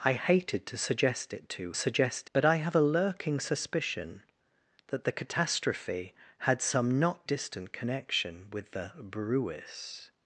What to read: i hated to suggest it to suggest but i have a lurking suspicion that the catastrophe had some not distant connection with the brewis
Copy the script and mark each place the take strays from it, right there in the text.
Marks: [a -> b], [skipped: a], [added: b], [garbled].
i hated to suggest it to suggest but i have a lurking suspicion that the catastrophe had some not distant connection with the brewis